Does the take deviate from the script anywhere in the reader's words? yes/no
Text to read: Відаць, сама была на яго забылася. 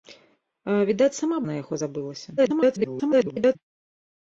yes